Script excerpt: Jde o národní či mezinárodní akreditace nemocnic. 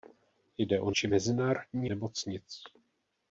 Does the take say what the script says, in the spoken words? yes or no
no